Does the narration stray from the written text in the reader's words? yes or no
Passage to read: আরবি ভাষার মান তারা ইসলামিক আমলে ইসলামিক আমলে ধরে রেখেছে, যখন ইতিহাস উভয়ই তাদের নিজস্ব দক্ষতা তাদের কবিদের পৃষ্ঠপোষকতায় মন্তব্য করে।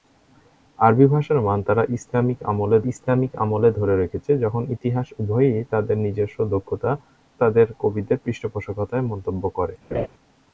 no